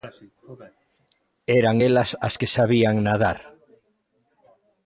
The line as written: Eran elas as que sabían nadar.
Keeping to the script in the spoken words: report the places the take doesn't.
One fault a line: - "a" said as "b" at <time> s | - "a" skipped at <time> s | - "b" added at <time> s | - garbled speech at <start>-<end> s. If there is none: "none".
none